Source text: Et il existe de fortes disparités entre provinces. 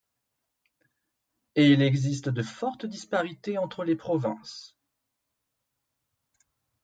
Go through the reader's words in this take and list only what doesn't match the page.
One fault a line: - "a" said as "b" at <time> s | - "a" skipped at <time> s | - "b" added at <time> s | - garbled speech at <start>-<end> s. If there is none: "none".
- "les" added at 3.8 s